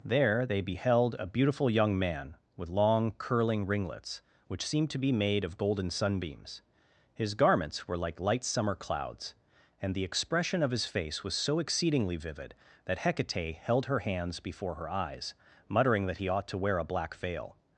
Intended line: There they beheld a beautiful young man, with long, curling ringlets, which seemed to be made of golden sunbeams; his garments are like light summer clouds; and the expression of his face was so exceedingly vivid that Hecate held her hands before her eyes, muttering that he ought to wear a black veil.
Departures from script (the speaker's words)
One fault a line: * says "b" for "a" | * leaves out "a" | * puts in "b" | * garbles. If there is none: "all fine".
* says "were" for "are"